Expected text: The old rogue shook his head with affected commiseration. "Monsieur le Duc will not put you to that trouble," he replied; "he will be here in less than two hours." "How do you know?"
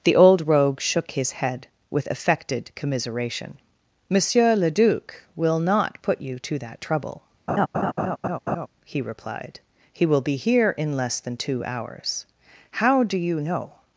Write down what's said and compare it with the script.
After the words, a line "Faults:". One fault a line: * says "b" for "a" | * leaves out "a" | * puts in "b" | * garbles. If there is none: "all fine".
The old rogue shook his head with affected commiseration. "Monsieur le Duc will not put you to that trouble," he replied; "he will be here in less than two hours." "How do you know?"
Faults:
all fine